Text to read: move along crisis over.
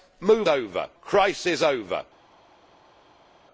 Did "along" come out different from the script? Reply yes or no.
yes